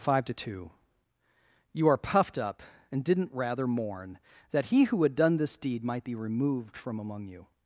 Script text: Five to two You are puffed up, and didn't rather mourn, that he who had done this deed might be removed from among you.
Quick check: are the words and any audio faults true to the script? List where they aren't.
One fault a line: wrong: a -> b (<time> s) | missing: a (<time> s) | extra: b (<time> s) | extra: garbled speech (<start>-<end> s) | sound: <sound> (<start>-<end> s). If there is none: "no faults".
no faults